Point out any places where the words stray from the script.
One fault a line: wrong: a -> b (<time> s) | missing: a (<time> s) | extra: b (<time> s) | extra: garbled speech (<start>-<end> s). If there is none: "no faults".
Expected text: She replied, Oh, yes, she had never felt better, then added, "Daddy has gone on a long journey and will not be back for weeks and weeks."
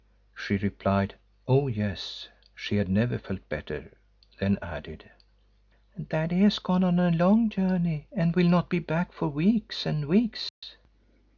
no faults